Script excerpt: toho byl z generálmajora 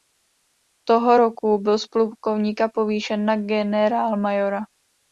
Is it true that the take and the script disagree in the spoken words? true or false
true